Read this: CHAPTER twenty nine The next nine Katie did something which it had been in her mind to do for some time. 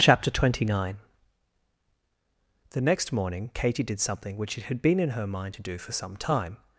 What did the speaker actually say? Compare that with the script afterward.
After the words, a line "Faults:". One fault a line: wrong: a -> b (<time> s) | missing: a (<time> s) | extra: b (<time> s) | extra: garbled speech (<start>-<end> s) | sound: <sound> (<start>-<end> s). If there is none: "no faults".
CHAPTER twenty nine The next morning Katie did something which it had been in her mind to do for some time.
Faults:
wrong: nine -> morning (3.1 s)